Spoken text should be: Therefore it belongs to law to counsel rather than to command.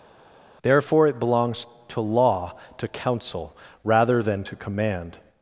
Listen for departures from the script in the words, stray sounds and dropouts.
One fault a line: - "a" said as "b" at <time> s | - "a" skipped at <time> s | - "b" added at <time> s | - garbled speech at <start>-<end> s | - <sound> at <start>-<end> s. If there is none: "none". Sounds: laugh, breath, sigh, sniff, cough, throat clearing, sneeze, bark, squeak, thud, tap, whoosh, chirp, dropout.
none